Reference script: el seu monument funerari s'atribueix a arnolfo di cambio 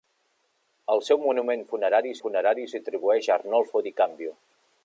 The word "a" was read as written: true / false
true